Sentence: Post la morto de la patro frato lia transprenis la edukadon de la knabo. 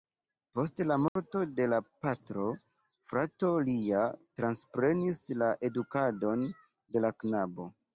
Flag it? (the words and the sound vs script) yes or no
yes